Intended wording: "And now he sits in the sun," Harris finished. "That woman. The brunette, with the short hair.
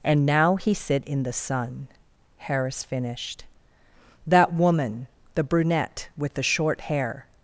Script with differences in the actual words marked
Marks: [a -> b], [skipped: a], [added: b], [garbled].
"And now he [sits -> sit] in the sun," Harris finished. "That woman. The brunette, with the short hair.